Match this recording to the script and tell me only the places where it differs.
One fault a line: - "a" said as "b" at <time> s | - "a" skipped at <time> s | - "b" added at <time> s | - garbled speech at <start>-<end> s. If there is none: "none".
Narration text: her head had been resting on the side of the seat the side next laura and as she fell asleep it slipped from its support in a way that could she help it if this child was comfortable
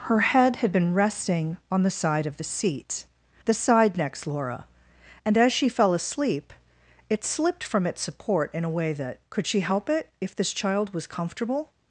none